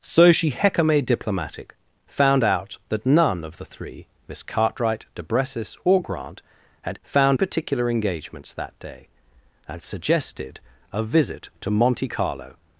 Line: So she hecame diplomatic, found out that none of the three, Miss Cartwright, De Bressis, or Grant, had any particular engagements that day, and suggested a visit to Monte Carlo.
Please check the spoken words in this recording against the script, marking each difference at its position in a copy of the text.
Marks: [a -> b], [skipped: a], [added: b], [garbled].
So she hecame diplomatic, found out that none of the three, Miss Cartwright, De Bressis, or Grant, had [any -> found] particular engagements that day, and suggested a visit to Monte Carlo.